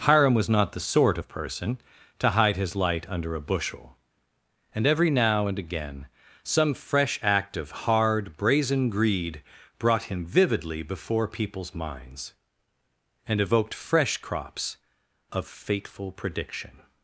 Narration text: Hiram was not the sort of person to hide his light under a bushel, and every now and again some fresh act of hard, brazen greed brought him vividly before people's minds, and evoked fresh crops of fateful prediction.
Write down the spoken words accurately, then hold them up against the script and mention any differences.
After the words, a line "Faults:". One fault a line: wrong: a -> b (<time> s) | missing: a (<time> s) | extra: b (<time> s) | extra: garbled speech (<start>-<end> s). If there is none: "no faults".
Hiram was not the sort of person to hide his light under a bushel, and every now and again some fresh act of hard, brazen greed brought him vividly before people's minds, and evoked fresh crops of fateful prediction.
Faults:
no faults